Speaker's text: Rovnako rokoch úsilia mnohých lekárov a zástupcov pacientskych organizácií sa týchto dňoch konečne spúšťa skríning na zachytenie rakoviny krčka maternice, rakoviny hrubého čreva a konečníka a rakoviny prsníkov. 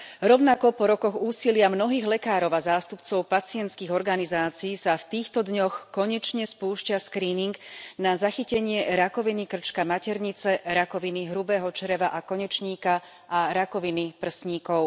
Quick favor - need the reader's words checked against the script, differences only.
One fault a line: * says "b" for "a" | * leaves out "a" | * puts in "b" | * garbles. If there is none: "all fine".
* puts in "po"
* puts in "v"